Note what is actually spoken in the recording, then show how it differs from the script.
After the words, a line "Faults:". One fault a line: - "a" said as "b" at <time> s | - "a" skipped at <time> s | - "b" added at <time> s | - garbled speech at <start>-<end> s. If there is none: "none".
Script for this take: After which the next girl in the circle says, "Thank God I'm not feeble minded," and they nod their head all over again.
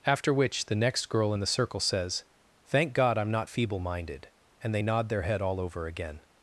After which the next girl in the circle says, "Thank God I'm not feeble minded," and they nod their head all over again.
Faults:
none